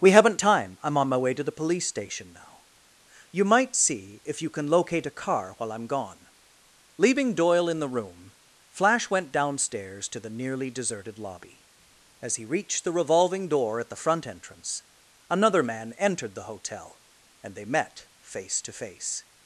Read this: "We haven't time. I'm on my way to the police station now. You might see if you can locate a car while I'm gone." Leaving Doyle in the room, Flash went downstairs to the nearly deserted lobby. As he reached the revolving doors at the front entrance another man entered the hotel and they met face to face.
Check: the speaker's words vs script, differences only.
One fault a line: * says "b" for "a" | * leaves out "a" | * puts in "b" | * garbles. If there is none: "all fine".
* says "door" for "doors"